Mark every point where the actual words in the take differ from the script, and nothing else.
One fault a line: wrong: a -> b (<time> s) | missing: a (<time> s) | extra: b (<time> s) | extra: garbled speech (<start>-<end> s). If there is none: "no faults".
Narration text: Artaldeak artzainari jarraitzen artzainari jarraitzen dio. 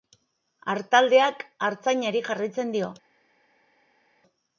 missing: artzainari jarraitzen (2.7 s)